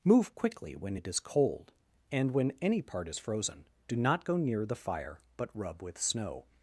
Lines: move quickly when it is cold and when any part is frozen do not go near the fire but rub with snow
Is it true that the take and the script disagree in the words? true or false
false